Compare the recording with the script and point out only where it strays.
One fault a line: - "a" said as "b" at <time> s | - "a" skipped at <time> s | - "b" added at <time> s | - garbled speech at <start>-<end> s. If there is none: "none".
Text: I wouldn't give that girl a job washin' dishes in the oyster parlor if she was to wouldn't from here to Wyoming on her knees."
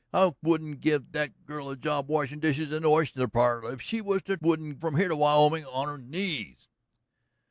none